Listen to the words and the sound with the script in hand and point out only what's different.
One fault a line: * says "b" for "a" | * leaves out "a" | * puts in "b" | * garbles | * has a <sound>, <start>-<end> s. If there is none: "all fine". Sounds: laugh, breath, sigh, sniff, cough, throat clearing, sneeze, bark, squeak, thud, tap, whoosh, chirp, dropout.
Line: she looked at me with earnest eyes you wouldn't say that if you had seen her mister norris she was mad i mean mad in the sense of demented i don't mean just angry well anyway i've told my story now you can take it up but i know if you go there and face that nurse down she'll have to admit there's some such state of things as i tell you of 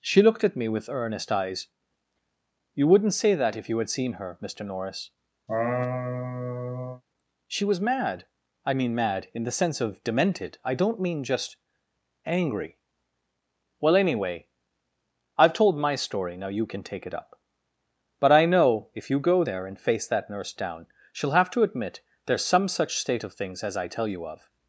* has a laugh, 5.5-7.0 s